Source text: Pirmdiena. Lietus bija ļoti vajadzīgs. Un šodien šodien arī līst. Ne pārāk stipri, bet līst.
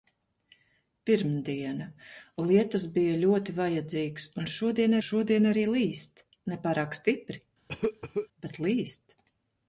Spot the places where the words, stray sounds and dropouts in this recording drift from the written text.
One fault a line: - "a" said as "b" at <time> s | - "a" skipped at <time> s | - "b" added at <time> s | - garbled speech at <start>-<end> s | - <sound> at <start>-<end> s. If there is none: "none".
- cough at 7.7-8.3 s